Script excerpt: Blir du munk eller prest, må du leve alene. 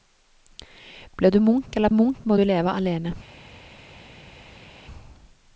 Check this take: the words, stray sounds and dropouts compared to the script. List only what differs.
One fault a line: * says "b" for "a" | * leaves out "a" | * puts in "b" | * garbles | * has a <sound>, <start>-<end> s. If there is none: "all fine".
* says "munk" for "prest"